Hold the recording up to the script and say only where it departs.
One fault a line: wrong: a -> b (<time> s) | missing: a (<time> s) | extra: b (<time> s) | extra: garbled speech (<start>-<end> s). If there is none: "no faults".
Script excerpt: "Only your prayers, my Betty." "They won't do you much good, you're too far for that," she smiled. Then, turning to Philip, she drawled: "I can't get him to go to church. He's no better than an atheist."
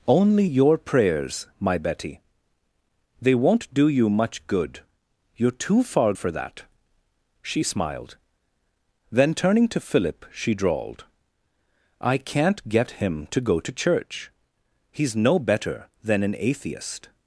no faults